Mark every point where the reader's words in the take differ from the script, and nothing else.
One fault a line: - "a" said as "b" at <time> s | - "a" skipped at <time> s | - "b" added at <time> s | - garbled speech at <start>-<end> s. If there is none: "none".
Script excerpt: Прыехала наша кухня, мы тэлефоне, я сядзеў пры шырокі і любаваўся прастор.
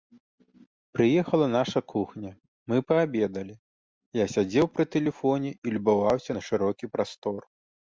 - "тэлефоне" said as "паабедалі" at 2.9 s
- "шырокі" said as "тэлефоне" at 5.0 s
- "на шырокі" added at 6.4 s